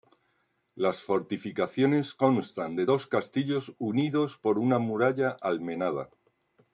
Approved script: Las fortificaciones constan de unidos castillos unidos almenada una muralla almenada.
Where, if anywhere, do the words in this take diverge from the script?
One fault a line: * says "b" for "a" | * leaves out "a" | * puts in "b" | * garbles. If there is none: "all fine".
* says "dos" for "unidos"
* says "por" for "almenada"